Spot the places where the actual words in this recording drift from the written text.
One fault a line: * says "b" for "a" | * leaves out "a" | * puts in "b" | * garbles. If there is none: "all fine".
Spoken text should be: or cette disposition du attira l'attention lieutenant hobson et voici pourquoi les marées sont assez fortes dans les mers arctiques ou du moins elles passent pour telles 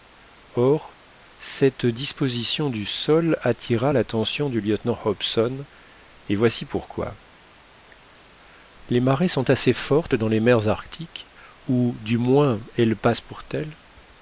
* puts in "sol"
* puts in "du"